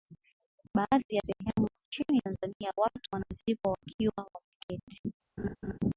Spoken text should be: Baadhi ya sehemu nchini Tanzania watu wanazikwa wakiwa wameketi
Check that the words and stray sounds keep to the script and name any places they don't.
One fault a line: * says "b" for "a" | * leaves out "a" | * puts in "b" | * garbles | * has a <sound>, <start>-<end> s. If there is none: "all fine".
* has a laugh, 5.4-5.8 s